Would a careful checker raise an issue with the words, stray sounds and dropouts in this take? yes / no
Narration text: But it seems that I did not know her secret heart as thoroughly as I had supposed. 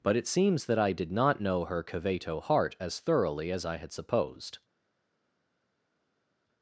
yes